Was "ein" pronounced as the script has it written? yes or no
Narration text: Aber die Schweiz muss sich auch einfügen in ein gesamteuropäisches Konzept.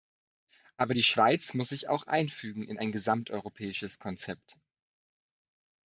yes